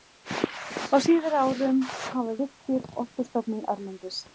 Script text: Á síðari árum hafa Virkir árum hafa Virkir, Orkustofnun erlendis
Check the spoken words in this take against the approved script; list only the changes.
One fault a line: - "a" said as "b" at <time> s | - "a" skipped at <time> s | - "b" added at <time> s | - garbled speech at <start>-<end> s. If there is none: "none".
- "árum hafa Virkir" skipped at 2.9 s